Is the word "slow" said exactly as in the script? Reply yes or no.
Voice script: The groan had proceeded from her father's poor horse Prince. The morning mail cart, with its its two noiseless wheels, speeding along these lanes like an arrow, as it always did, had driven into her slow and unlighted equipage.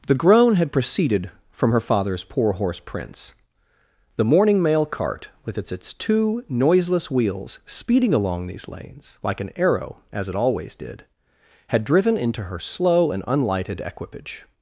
yes